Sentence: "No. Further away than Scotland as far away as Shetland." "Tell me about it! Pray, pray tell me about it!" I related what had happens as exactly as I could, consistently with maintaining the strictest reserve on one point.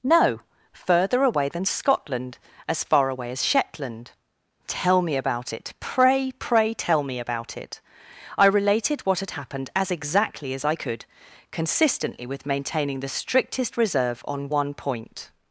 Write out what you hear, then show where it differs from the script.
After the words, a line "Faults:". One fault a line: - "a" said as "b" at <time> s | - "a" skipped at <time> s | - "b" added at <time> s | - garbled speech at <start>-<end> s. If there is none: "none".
"No. Further away than Scotland as far away as Shetland." "Tell me about it! Pray, pray tell me about it!" I related what had happened as exactly as I could, consistently with maintaining the strictest reserve on one point.
Faults:
- "happens" said as "happened" at 9.3 s